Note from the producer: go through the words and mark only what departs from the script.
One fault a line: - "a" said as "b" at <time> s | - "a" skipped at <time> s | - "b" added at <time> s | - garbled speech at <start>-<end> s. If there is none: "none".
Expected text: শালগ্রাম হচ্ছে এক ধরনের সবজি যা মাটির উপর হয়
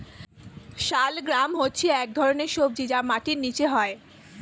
- "উপর" said as "নিচে" at 3.4 s